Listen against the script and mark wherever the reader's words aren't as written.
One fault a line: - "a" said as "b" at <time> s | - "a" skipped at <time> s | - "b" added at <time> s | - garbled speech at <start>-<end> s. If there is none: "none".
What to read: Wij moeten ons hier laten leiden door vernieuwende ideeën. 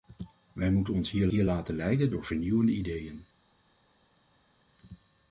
- "hier" added at 1.3 s